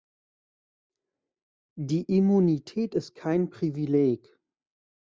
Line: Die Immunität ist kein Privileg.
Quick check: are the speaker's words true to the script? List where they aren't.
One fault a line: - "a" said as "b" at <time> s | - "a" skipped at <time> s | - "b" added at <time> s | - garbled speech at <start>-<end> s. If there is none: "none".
none